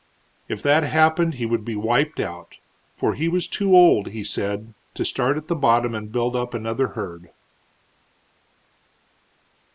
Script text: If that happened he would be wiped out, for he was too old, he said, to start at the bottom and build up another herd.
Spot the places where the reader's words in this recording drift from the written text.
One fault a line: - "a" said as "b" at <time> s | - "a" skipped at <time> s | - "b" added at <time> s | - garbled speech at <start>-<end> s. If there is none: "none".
none